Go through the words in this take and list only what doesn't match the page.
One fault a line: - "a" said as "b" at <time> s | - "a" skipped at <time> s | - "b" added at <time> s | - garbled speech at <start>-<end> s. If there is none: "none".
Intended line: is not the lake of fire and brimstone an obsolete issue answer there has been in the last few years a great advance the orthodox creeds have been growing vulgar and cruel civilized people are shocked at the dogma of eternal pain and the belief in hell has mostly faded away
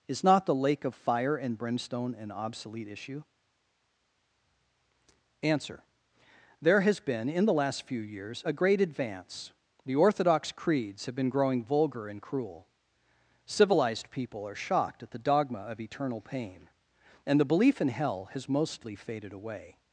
none